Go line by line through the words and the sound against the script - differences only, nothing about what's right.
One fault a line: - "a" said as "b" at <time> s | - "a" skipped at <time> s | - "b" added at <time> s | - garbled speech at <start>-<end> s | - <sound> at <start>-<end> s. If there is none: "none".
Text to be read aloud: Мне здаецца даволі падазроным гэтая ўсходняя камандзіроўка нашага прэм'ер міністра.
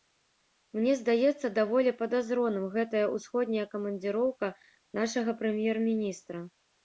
none